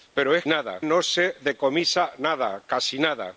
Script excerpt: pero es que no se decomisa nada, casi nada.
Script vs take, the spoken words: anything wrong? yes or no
yes